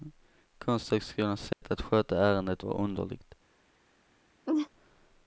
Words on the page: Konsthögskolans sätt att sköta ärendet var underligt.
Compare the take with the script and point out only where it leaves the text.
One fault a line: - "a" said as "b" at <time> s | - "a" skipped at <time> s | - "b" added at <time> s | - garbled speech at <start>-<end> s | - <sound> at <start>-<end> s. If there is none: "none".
- dropout at 1.5-1.6 s
- laugh at 4.5-4.7 s